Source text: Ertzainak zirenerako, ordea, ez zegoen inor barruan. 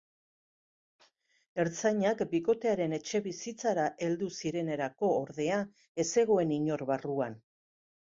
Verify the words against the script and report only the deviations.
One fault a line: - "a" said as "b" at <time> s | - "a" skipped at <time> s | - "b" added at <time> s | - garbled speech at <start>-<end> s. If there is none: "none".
- "bikotearen etxebizitzara heldu" added at 2.3 s